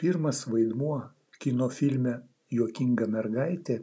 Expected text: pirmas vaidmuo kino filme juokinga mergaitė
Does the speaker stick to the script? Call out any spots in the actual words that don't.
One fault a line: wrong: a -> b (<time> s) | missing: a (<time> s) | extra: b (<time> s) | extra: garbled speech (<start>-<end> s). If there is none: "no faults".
no faults